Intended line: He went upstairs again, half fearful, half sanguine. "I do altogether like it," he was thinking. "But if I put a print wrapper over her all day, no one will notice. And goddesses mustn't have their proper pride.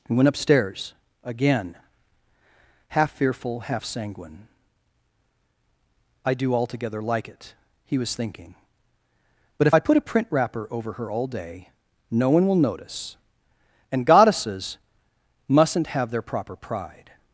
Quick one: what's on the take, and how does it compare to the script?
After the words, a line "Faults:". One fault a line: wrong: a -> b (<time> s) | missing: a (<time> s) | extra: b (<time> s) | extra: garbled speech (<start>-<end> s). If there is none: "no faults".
He went upstairs again, half fearful, half sanguine. "I do altogether like it," he was thinking. "But if I put a print wrapper over her all day, no one will notice. And goddesses mustn't have their proper pride.
Faults:
no faults